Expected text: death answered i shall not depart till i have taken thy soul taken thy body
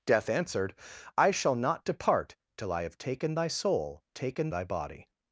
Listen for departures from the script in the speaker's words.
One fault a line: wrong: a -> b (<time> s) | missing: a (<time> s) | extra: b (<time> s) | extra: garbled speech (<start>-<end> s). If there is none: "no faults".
no faults